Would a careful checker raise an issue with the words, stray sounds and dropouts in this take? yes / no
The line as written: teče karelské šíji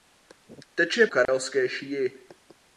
yes